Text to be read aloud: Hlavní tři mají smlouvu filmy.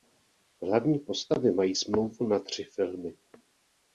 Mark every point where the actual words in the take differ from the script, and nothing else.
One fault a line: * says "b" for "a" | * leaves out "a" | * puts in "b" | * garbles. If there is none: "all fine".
* says "postavy" for "tři"
* puts in "na tři"